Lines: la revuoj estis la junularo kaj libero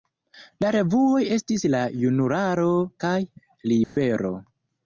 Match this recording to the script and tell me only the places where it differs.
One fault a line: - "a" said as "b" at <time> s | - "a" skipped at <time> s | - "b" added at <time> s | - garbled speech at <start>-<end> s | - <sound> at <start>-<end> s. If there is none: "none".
- dropout at 3.8-4.0 s